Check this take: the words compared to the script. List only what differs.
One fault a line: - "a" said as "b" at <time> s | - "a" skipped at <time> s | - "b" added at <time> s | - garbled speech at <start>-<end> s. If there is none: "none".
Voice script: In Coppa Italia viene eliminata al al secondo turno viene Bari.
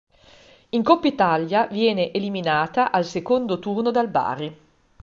- "al" skipped at 3.0 s
- "viene" said as "dal" at 3.9 s